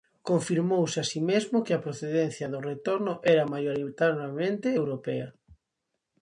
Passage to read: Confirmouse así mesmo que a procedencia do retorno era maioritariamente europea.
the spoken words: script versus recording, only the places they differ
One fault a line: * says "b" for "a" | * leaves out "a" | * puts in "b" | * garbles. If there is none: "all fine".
all fine